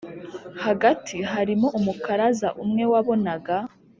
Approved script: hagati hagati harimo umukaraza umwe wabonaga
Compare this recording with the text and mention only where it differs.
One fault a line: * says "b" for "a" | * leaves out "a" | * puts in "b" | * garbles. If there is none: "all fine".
* leaves out "hagati"